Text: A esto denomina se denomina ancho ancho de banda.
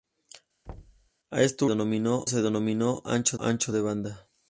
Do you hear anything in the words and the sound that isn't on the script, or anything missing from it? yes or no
yes